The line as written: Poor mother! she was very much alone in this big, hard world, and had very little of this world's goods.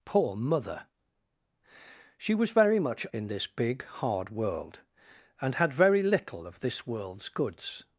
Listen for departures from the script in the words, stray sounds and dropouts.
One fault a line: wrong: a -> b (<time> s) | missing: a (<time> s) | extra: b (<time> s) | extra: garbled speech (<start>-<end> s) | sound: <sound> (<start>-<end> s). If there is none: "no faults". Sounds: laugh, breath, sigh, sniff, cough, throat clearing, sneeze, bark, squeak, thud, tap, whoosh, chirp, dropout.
missing: alone (3.0 s)